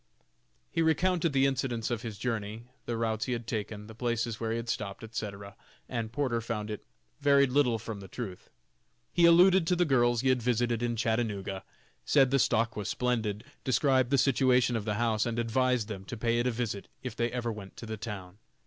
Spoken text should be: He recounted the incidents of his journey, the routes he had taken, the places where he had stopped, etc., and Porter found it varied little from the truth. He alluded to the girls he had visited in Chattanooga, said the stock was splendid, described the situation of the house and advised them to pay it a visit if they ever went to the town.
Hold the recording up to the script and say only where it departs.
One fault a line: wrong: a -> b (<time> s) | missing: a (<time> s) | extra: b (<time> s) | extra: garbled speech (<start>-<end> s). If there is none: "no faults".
no faults